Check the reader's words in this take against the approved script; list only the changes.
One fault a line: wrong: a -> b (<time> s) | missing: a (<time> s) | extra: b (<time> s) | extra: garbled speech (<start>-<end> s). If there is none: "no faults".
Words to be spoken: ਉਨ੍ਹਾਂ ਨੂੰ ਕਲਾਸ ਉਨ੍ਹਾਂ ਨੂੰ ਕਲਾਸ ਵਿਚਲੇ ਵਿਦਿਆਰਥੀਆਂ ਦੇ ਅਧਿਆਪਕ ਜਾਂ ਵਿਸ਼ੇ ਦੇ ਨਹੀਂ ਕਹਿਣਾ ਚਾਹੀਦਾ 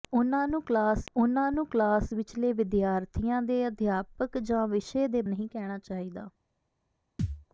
no faults